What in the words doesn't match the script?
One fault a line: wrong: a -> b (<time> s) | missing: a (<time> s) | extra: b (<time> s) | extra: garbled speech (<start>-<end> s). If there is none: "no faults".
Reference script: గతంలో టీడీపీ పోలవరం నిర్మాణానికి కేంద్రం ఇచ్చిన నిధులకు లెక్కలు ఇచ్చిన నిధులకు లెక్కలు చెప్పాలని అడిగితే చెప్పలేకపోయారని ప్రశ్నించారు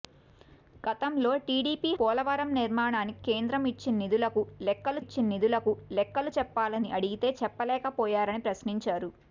no faults